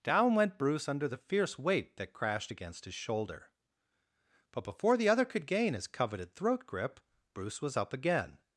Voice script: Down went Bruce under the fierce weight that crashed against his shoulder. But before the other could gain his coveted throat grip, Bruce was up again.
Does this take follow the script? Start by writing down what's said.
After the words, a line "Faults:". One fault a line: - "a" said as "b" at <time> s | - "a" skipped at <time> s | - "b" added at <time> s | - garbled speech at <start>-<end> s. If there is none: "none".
Down went Bruce under the fierce weight that crashed against his shoulder. But before the other could gain his coveted throat grip, Bruce was up again.
Faults:
none